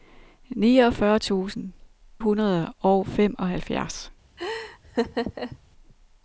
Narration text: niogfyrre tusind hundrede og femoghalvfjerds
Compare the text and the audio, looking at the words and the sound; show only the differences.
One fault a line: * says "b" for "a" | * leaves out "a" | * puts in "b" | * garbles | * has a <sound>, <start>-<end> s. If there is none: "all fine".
* has a laugh, 4.4-5.6 s